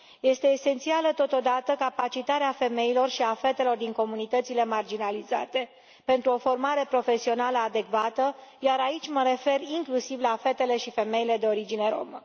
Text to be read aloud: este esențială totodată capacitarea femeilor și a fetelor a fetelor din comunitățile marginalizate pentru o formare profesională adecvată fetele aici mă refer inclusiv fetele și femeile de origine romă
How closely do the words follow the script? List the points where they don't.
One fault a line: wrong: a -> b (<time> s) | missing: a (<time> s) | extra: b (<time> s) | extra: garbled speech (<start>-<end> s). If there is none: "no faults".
missing: a fetelor (3.8 s)
wrong: fetele -> iar (8.6 s)
extra: la (10.2 s)